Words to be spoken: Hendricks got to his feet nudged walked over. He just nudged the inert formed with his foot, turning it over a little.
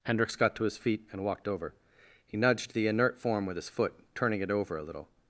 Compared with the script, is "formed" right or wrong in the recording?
wrong